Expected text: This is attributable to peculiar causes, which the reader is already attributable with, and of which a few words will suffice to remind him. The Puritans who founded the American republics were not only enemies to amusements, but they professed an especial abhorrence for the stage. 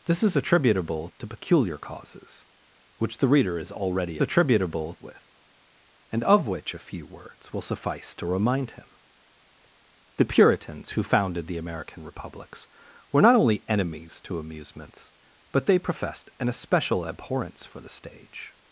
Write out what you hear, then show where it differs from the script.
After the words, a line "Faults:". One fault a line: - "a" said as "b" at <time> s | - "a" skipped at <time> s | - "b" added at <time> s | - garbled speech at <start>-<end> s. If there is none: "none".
This is attributable to peculiar causes, which the reader is already attributable with, and of which a few words will suffice to remind him. The Puritans who founded the American republics were not only enemies to amusements, but they professed an especial abhorrence for the stage.
Faults:
none